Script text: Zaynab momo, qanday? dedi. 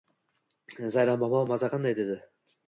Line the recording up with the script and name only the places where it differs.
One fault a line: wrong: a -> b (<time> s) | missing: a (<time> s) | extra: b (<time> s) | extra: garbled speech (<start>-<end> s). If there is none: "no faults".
extra: maza (1.5 s)